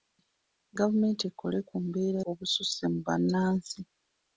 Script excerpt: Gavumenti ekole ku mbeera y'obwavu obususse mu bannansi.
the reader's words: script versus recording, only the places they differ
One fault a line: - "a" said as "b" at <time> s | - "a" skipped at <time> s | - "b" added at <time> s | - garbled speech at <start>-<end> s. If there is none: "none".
- "y'obwavu" skipped at 2.2 s